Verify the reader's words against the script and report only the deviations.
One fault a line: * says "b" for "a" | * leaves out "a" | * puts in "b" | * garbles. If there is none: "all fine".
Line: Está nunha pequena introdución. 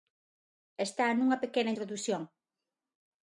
all fine